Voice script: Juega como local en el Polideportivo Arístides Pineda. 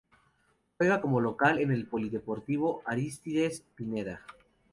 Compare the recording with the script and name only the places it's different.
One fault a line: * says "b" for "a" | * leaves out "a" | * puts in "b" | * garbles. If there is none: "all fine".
all fine